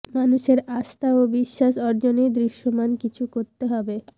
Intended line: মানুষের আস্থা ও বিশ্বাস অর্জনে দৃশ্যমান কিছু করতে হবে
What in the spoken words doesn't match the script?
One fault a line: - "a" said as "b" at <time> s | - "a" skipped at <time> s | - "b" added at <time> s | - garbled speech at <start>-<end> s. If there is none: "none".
none